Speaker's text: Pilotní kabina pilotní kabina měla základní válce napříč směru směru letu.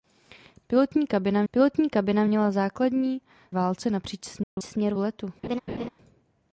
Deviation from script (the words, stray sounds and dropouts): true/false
true